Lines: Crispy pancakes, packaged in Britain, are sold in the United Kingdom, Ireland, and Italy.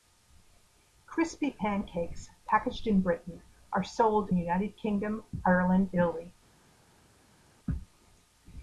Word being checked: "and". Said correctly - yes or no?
no